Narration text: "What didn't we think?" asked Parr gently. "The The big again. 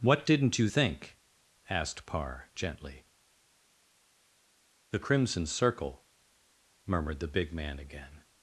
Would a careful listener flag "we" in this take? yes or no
yes